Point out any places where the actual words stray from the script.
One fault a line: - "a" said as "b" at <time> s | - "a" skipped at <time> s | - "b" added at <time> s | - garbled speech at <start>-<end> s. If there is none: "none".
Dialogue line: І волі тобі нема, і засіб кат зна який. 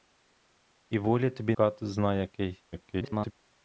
- "нема і засіб" skipped at 1.6 s
- garbled speech at 2.7-3.3 s